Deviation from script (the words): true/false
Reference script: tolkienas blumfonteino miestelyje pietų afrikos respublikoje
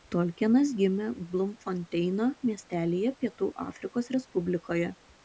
true